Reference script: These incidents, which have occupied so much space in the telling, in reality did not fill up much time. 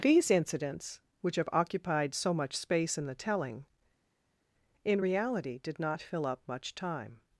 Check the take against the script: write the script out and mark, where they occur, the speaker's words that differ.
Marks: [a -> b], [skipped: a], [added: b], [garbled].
These incidents, which have occupied so much space in the telling, in reality did not fill up much time.